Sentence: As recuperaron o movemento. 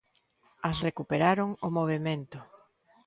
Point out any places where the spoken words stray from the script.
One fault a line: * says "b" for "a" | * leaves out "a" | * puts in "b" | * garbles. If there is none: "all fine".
all fine